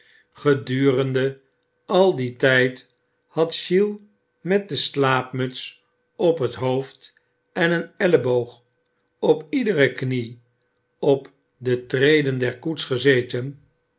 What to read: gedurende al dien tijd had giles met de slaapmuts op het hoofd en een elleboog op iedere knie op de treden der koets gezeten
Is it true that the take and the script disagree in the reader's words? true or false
false